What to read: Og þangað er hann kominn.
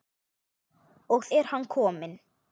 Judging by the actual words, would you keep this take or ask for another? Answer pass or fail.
fail